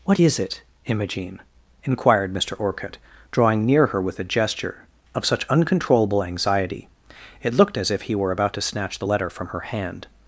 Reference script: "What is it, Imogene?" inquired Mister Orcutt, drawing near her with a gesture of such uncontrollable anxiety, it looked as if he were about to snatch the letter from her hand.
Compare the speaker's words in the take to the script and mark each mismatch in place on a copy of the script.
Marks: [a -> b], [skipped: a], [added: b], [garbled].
"What is it, Imogene?" inquired Mister Orcutt, drawing near her with a gesture of such uncontrollable anxiety, it looked as if he were about to snatch the letter from her hand.